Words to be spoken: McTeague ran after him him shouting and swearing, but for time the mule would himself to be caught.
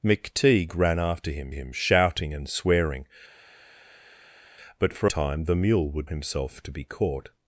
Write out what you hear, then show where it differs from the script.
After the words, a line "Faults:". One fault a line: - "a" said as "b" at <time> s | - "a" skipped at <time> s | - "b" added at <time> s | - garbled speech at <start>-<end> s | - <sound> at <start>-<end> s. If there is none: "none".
McTeague ran after him him shouting and swearing, but for time the mule would himself to be caught.
Faults:
none